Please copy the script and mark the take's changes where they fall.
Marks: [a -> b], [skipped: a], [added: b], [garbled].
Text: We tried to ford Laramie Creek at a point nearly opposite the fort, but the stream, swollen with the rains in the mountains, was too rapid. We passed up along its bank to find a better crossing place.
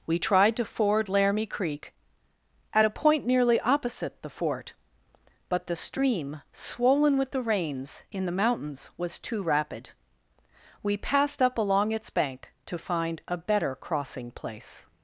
We tried to ford Laramie Creek at a point nearly opposite the fort, but the stream, swollen with the rains in the mountains, was too rapid. We passed up along its bank to find a better crossing place.